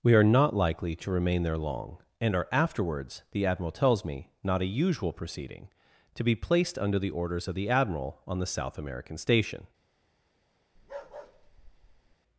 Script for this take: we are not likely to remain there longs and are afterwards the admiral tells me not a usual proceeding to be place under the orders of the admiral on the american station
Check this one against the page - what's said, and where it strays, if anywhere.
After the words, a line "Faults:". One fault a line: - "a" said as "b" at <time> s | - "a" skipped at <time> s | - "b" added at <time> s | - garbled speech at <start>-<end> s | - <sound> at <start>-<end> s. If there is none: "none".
we are not likely to remain there long and are afterwards the admiral tells me not a usual proceeding to be placed under the orders of the admiral on the south american station
Faults:
- "longs" said as "long" at 1.6 s
- "place" said as "placed" at 6.3 s
- "south" added at 8.5 s
- bark at 10.8-12.2 s